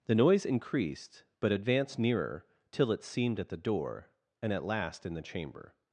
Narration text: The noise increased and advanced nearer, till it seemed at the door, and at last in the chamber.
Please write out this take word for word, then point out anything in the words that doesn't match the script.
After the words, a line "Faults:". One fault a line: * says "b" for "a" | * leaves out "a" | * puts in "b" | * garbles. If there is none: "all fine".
The noise increased but advanced nearer, till it seemed at the door, and at last in the chamber.
Faults:
* says "but" for "and"